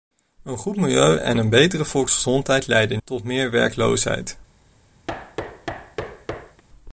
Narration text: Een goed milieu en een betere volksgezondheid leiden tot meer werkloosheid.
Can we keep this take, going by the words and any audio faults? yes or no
no